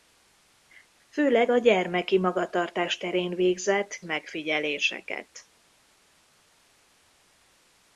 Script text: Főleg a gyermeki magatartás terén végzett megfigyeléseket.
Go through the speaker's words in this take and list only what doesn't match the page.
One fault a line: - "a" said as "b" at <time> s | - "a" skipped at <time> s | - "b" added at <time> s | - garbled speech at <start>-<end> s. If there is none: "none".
none